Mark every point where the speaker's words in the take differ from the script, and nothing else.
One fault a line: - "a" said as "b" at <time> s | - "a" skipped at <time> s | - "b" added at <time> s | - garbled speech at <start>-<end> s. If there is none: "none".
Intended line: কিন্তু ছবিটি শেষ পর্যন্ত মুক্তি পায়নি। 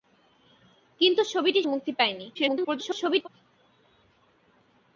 - "শেষ পর্যন্ত" skipped at 1.6 s
- garbled speech at 2.3-3.3 s